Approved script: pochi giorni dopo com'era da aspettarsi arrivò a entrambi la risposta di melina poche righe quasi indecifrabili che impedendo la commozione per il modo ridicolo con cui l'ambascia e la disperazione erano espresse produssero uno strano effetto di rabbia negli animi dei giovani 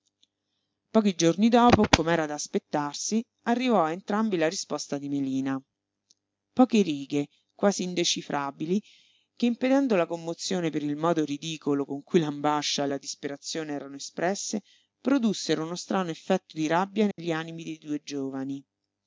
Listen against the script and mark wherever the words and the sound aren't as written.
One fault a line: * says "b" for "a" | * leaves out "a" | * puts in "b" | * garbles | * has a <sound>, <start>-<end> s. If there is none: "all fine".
* has a dropout, 17.1-17.2 s
* puts in "due"